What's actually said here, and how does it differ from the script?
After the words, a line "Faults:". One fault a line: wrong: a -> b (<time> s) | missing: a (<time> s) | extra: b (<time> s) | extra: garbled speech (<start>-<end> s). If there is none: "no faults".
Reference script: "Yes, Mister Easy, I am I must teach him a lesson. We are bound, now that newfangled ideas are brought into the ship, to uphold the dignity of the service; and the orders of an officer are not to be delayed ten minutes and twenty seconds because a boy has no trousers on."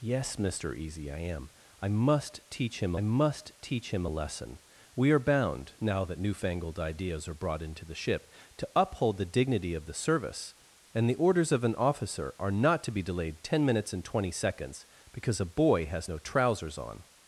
"Yes, Mister Easy, I am I must teach him must teach him a lesson. We are bound, now that newfangled ideas are brought into the ship, to uphold the dignity of the service; and the orders of an officer are not to be delayed ten minutes and twenty seconds because a boy has no trousers on."
Faults:
extra: must teach him (3.0 s)